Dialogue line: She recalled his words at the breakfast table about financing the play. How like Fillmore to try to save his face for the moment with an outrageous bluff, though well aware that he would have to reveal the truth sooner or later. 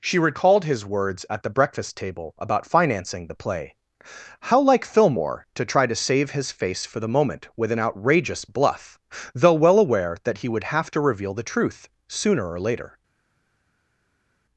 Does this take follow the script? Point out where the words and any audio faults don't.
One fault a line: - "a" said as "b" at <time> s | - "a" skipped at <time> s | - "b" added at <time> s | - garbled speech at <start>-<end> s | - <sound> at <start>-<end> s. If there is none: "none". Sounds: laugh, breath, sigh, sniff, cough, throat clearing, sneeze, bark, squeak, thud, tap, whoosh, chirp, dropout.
none